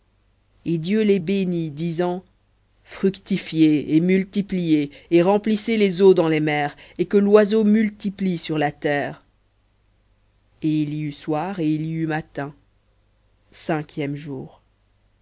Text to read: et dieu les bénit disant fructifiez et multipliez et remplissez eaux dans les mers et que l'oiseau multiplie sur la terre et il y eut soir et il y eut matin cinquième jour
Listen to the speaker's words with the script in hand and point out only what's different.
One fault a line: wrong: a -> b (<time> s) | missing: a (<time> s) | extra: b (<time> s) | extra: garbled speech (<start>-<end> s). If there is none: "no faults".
extra: les (5.8 s)